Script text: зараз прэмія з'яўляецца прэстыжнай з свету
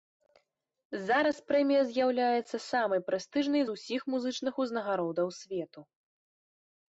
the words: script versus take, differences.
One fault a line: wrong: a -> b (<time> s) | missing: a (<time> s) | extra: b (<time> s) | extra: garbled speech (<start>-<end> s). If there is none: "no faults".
extra: самай (2.7 s)
extra: усіх музычных узнагародаў (3.8 s)